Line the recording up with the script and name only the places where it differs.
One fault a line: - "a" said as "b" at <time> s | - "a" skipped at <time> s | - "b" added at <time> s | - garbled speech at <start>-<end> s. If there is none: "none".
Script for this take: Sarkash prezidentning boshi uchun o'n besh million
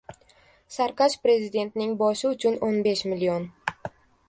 none